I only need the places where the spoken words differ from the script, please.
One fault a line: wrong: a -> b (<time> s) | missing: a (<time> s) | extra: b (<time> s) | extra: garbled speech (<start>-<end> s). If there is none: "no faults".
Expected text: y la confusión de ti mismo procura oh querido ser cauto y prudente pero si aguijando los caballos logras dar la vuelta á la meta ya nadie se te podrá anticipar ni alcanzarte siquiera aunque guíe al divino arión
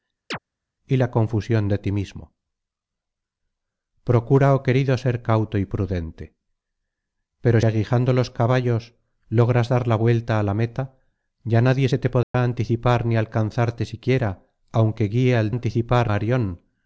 missing: si (7.6 s)
wrong: divino -> anticipar (15.5 s)